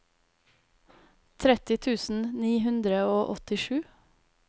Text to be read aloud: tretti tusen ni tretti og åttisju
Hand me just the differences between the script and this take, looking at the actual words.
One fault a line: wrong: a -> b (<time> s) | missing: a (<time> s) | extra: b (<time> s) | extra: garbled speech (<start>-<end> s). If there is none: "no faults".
wrong: tretti -> hundre (2.7 s)